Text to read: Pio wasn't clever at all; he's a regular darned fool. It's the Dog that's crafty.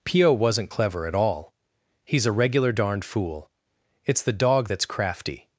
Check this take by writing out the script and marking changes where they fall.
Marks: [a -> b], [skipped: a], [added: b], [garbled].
Pio wasn't clever at all; he's a regular darned fool. It's the Dog that's crafty.